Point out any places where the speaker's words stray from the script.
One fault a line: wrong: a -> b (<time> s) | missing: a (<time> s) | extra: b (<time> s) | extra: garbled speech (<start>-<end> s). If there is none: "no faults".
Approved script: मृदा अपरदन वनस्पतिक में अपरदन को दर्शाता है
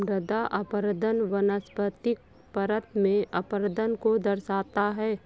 extra: परत (2.5 s)